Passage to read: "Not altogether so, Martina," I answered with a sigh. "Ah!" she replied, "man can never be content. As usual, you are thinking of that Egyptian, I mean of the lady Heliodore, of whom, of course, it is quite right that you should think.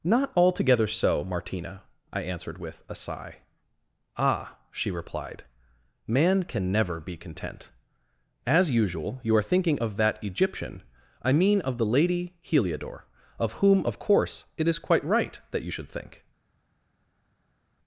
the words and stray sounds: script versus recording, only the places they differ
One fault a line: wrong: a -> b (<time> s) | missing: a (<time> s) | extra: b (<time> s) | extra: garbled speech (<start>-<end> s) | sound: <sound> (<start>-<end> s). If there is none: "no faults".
no faults